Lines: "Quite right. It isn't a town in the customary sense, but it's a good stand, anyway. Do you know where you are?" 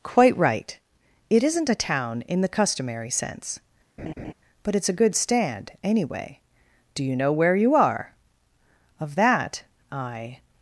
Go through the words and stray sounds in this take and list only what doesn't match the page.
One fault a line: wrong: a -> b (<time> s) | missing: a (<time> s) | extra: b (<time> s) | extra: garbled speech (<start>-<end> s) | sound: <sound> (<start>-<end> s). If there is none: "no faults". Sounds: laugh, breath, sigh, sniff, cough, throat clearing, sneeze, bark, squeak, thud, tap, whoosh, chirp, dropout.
sound: laugh (4.0-4.3 s)
extra: Of that I (9.0 s)